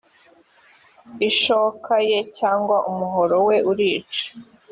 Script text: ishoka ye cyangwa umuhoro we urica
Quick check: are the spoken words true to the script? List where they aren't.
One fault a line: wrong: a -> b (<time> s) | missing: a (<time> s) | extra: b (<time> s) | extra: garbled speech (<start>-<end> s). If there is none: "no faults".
no faults